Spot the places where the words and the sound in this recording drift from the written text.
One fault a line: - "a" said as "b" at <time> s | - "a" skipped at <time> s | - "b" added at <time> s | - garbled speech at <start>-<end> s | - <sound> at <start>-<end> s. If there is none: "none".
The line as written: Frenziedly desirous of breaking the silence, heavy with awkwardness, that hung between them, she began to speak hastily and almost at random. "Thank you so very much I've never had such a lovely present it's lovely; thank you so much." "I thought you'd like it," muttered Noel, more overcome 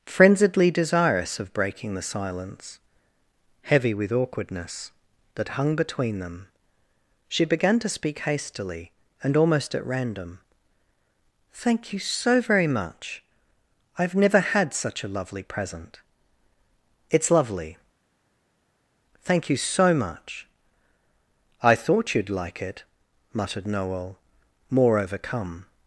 none